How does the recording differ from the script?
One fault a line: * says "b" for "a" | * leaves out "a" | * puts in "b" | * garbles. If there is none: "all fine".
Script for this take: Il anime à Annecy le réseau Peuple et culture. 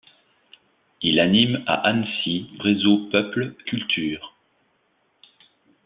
* leaves out "le"
* leaves out "et"